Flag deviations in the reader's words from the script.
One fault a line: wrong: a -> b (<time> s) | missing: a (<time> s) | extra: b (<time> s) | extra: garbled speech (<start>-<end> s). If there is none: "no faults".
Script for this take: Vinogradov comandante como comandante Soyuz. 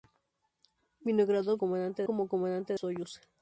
no faults